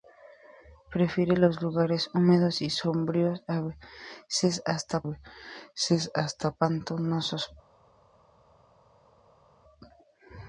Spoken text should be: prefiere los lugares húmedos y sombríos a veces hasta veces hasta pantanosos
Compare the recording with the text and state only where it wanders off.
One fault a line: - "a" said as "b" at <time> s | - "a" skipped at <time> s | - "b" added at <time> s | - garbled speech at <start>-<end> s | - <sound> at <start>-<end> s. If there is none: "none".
none